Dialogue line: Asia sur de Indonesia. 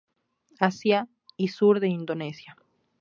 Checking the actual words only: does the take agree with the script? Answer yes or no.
no